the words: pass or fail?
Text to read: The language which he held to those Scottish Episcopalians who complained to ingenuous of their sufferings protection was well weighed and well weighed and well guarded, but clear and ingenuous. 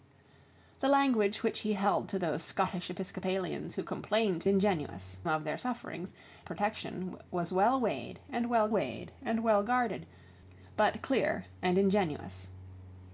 pass